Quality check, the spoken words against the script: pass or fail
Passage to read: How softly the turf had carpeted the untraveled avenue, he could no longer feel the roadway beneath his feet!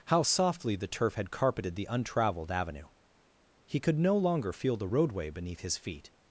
pass